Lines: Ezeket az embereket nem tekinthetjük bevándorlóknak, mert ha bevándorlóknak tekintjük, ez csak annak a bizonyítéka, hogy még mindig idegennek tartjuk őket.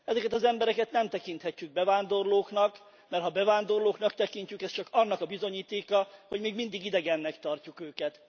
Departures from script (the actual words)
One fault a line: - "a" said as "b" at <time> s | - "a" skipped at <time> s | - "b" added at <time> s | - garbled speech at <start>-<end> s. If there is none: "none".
none